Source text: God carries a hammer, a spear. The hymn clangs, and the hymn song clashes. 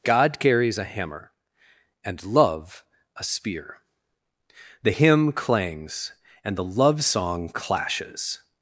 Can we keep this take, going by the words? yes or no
no